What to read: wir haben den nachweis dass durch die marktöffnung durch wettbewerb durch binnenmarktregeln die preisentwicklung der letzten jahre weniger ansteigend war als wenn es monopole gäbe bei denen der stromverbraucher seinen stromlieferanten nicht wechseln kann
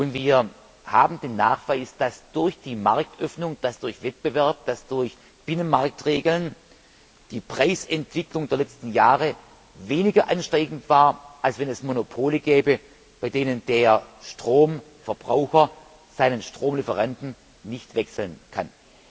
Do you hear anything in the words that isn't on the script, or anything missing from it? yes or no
no